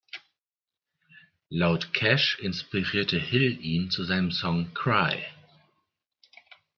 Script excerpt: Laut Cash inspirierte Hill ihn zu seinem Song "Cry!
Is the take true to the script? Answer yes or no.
yes